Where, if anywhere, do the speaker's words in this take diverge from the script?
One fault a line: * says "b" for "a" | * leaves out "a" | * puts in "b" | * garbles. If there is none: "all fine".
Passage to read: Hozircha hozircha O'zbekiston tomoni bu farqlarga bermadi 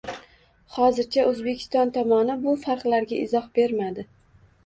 * leaves out "hozircha"
* puts in "izoh"